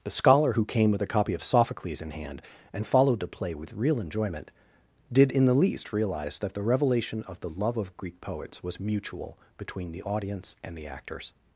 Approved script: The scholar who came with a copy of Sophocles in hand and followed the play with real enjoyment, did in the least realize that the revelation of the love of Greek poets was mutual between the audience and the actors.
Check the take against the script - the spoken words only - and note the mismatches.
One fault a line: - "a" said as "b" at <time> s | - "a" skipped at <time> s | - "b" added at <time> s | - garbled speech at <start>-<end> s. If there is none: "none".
none